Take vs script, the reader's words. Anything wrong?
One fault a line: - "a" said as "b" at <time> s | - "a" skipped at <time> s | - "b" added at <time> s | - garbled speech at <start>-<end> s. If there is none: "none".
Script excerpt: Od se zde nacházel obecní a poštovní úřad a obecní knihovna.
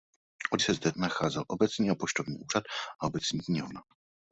none